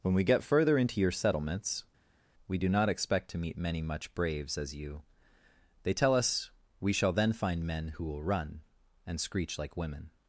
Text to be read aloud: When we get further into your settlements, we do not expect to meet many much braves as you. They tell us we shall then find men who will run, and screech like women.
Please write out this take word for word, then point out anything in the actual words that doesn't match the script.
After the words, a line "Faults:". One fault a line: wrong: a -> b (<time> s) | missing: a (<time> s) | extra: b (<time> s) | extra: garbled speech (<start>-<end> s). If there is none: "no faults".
When we get further into your settlements, we do not expect to meet many much braves as you. They tell us we shall then find men who will run, and screech like women.
Faults:
no faults